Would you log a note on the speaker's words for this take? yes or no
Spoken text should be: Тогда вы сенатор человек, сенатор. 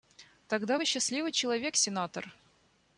yes